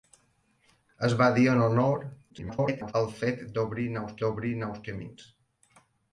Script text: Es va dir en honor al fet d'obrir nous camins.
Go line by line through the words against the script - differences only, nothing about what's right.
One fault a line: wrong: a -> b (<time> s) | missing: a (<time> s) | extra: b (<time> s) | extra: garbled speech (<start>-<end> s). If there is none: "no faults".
extra: garbled speech (2.3-2.9 s)
extra: d'obrir nous (4.3 s)